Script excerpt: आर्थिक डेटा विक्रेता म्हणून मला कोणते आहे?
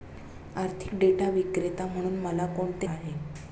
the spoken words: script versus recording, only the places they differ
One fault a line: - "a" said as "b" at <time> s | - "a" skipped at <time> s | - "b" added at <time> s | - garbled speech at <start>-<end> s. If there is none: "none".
none